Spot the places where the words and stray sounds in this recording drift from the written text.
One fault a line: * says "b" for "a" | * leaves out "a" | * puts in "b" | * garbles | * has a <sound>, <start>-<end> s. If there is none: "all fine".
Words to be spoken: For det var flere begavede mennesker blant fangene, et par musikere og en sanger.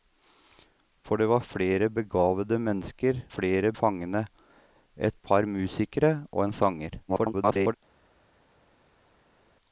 * says "flere" for "blant"
* garbles